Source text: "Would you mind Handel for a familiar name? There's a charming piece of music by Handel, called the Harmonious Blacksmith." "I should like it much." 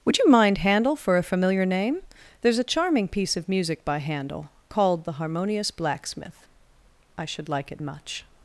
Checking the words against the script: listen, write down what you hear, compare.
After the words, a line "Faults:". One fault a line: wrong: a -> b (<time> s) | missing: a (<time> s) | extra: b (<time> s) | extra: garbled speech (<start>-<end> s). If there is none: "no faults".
"Would you mind Handel for a familiar name? There's a charming piece of music by Handel, called the Harmonious Blacksmith." "I should like it much."
Faults:
no faults